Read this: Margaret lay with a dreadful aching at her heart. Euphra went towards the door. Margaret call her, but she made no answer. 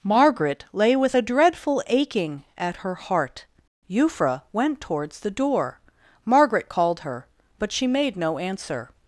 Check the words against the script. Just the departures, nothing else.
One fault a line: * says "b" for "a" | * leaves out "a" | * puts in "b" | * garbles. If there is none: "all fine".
* says "called" for "call"